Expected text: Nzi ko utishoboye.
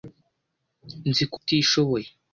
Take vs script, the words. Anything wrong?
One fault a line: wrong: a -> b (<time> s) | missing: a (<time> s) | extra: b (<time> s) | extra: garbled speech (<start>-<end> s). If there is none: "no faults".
no faults